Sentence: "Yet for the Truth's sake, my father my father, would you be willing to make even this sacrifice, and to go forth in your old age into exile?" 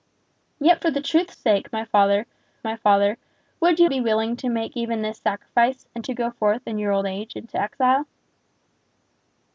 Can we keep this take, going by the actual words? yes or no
yes